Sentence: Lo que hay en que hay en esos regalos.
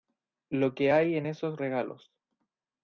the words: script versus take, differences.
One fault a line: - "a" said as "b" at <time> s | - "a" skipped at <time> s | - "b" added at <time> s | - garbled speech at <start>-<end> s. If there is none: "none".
- "que hay en" skipped at 1.3 s